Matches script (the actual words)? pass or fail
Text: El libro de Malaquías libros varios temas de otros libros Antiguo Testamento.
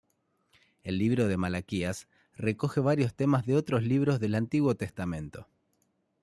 fail